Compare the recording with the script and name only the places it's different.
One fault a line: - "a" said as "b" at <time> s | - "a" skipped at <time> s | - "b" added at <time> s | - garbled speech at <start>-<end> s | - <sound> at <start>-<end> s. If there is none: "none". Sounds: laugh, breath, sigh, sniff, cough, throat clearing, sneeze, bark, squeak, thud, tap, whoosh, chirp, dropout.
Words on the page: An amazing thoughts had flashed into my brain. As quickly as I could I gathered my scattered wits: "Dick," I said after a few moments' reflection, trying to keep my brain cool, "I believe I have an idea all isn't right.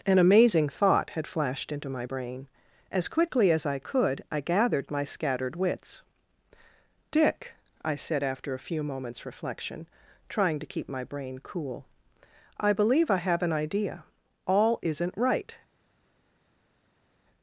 - "thoughts" said as "thought" at 0.6 s